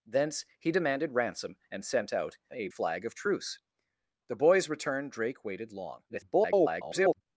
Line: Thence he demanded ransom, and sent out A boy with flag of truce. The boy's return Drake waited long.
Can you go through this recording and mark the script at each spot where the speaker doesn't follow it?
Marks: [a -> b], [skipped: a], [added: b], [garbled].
Thence he demanded ransom, and sent out A [skipped: boy with] flag of truce. The boy's return Drake waited long. [garbled]